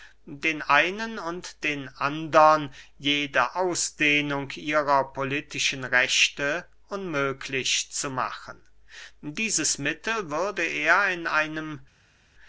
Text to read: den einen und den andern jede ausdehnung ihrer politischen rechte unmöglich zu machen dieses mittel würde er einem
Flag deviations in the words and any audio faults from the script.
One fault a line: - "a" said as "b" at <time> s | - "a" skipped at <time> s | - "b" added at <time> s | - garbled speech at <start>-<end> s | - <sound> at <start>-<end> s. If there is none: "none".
- "in" added at 11.1 s